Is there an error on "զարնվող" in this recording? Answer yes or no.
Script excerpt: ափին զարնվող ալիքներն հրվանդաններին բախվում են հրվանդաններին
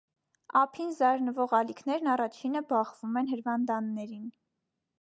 no